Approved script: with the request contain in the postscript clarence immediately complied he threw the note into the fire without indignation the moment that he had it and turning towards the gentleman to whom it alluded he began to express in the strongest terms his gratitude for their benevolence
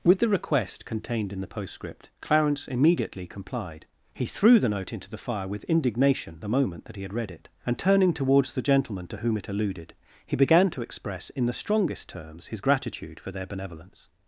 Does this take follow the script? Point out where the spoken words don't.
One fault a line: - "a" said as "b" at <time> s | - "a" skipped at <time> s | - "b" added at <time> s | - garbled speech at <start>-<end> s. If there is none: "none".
- "contain" said as "contained" at 0.8 s
- "without" said as "with" at 5.5 s
- "read" added at 7.1 s